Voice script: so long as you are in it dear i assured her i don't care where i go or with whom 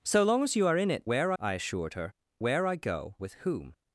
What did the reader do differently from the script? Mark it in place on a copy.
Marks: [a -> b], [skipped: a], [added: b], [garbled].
so long as you are in it [dear -> where] i assured her [skipped: i don't care] where i go [skipped: or] with whom